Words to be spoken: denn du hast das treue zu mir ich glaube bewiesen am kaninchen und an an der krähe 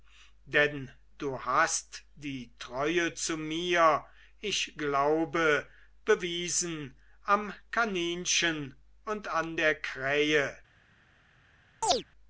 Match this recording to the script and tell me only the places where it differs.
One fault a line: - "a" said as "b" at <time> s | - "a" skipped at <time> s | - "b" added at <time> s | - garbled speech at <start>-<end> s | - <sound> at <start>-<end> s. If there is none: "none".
- "das" said as "die" at 2.1 s
- "an" skipped at 9.6 s
- chirp at 11.8-12.0 s